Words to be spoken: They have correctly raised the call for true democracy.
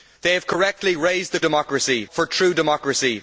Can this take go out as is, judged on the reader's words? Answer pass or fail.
fail